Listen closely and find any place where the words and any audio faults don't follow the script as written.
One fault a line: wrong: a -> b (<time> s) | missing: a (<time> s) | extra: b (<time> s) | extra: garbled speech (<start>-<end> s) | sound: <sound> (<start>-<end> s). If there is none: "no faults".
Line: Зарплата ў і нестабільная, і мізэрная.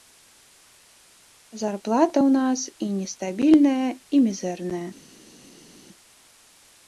extra: нас (2.4 s)